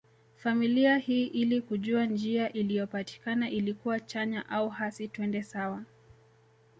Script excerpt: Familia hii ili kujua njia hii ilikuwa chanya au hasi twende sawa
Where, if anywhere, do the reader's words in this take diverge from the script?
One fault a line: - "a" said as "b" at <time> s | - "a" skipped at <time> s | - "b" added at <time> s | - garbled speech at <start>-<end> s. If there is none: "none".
- "hii" said as "iliyopatikana" at 2.5 s